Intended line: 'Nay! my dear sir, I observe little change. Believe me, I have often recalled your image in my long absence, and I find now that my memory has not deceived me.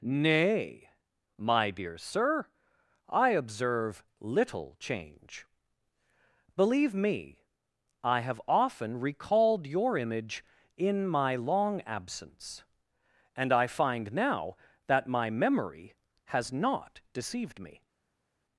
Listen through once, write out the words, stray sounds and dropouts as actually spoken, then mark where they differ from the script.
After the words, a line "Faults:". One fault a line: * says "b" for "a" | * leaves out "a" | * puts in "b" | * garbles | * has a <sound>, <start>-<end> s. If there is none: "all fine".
'Nay! my dear sir, I observe little change. Believe me, I have often recalled your image in my long absence, and I find now that my memory has not deceived me.
Faults:
all fine